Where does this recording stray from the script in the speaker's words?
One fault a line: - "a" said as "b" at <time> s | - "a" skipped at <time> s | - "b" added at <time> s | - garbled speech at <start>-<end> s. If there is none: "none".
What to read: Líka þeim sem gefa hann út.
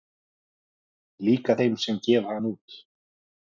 none